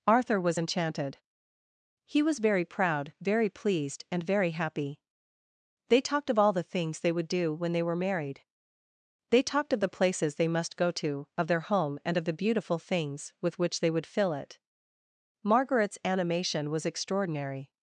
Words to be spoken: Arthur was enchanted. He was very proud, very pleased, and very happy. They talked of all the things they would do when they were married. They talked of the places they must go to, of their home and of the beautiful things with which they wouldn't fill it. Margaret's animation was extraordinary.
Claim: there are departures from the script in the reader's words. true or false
true